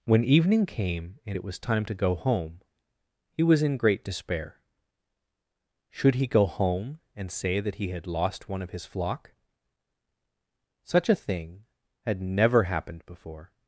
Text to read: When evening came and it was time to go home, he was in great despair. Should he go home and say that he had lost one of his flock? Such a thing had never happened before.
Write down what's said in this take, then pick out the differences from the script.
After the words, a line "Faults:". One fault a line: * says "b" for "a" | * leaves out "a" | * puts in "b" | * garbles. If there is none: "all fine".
When evening came and it was time to go home, he was in great despair. Should he go home and say that he had lost one of his flock? Such a thing had never happened before.
Faults:
all fine